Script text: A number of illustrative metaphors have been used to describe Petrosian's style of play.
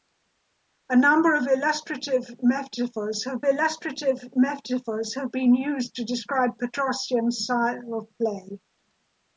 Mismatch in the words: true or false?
true